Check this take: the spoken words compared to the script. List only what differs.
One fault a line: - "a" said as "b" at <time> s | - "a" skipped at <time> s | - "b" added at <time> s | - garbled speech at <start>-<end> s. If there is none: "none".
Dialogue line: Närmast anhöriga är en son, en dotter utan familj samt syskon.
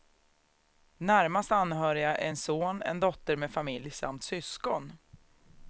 - "utan" said as "med" at 3.4 s